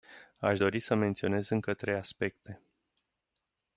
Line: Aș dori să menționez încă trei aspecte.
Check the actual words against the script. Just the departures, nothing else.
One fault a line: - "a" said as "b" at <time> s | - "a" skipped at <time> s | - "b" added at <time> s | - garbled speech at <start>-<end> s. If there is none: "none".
none